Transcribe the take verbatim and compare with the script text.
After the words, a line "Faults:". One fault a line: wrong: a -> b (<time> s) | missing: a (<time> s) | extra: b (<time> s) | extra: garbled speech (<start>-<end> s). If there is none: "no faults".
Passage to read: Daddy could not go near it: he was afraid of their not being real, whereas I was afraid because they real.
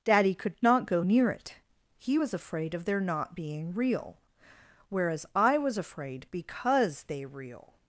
Daddy could not go near it: he was afraid of their not being real, whereas I was afraid because they real.
Faults:
no faults